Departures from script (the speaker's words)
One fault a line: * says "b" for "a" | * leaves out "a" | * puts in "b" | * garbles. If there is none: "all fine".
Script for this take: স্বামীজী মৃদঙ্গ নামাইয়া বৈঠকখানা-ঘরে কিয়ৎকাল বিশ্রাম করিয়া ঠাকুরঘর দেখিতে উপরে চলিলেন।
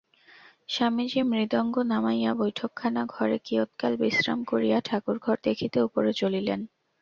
all fine